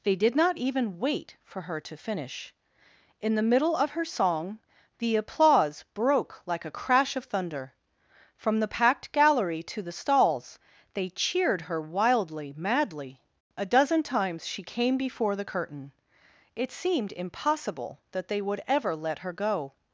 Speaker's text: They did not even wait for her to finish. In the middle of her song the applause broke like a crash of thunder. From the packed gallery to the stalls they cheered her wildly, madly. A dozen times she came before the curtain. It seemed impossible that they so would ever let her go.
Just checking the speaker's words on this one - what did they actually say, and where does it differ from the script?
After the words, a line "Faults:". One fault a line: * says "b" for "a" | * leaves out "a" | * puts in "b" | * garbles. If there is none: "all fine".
They did not even wait for her to finish. In the middle of her song the applause broke like a crash of thunder. From the packed gallery to the stalls they cheered her wildly, madly. A dozen times she came before the curtain. It seemed impossible that they would ever let her go.
Faults:
* leaves out "so"